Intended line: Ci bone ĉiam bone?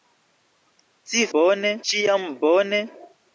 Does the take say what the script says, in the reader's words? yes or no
yes